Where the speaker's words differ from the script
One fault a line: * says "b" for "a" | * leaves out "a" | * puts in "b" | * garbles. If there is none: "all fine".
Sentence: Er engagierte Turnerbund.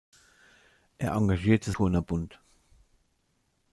all fine